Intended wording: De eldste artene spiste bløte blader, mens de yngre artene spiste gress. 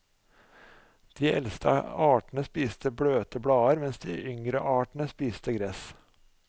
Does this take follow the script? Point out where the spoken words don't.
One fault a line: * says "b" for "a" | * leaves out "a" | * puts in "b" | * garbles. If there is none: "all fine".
all fine